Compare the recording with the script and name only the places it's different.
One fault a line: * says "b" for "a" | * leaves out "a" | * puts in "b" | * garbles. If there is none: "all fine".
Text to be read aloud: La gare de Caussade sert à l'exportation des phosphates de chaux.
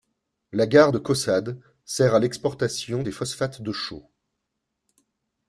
all fine